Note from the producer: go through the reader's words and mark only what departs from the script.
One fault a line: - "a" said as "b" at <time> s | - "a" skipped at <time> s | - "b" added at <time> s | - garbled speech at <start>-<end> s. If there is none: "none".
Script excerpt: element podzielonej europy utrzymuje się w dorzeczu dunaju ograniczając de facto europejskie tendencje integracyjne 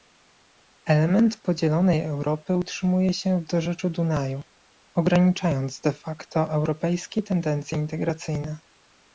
none